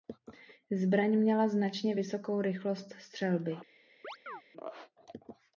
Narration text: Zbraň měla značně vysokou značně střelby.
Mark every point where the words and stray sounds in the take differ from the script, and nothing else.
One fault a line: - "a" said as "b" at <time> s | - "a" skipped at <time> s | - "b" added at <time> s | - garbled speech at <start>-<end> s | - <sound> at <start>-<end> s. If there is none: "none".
- "značně" said as "rychlost" at 2.4 s
- chirp at 4.0-4.4 s